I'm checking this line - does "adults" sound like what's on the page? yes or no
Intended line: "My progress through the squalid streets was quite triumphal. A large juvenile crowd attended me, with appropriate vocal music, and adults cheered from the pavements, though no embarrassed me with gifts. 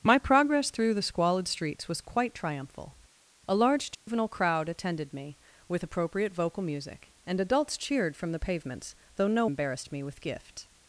yes